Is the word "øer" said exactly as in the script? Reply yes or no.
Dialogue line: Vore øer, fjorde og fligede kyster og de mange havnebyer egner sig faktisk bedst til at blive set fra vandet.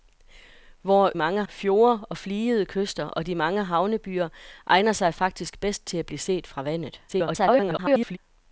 no